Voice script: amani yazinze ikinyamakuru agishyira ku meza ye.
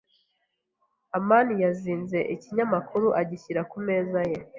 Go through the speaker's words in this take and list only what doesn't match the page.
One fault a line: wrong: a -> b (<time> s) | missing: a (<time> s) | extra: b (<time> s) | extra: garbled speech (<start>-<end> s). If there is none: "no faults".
no faults